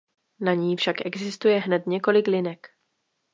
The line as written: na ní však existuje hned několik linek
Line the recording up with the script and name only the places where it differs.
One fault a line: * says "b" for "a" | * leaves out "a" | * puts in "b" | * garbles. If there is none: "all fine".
all fine